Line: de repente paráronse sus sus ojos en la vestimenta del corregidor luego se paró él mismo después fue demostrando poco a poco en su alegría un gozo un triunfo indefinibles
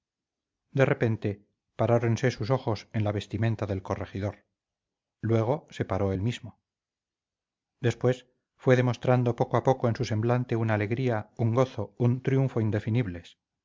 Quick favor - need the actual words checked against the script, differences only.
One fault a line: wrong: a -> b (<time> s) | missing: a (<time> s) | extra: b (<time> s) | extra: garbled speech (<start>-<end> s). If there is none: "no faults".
missing: sus (2.5 s)
extra: semblante una (10.1 s)